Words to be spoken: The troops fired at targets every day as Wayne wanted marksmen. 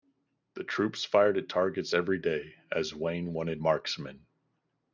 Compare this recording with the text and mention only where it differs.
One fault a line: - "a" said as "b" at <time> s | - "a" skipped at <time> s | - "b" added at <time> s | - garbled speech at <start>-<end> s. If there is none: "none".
none